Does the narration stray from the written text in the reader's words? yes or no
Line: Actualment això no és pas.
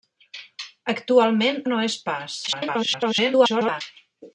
yes